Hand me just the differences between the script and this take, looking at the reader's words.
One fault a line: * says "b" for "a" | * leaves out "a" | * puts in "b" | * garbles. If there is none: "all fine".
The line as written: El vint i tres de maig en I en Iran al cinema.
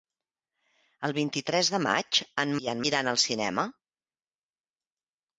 all fine